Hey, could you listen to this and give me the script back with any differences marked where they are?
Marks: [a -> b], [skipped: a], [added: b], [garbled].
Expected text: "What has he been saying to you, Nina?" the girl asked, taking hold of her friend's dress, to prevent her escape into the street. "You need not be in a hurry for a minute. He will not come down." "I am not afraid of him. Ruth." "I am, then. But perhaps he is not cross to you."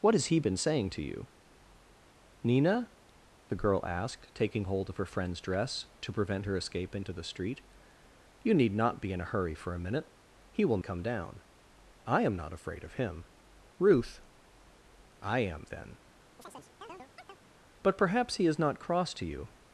"What has he been saying to you, Nina?" the girl asked, taking hold of her friend's dress, to prevent her escape into the street. "You need not be in a hurry for a minute. He will [skipped: not] come down." "I am not afraid of him. Ruth." "I am, then. But perhaps he is not cross to you."